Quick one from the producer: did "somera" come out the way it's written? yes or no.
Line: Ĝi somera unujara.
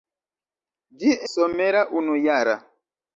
yes